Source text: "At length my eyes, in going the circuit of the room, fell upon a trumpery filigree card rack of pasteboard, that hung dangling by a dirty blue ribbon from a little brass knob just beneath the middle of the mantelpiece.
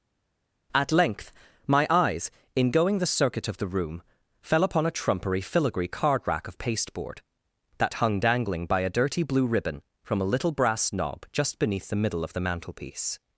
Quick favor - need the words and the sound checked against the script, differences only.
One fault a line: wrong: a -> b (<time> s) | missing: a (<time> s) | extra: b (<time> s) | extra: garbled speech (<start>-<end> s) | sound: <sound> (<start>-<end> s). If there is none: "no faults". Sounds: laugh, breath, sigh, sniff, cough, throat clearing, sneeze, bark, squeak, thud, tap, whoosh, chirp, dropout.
no faults